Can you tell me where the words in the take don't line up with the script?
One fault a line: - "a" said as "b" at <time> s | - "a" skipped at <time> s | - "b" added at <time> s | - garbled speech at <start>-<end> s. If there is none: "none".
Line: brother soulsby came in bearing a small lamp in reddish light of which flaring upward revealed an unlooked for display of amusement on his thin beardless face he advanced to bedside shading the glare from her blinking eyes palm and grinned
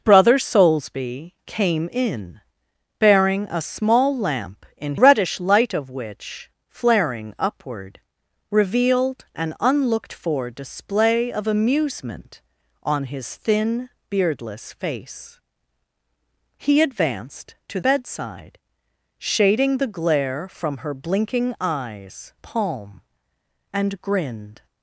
none